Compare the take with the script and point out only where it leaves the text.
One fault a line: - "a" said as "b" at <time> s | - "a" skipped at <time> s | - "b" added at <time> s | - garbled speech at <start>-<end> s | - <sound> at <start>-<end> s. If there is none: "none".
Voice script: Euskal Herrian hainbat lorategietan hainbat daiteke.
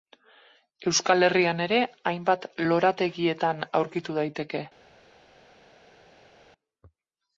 - "ere" added at 1.7 s
- "hainbat" said as "aurkitu" at 3.8 s